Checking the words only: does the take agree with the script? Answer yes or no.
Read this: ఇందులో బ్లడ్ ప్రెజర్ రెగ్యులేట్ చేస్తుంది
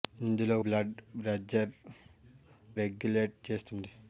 yes